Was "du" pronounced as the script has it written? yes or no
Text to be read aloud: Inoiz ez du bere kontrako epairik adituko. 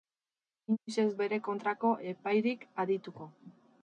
no